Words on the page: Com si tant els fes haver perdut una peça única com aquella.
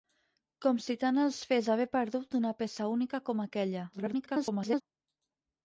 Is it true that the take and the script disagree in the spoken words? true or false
true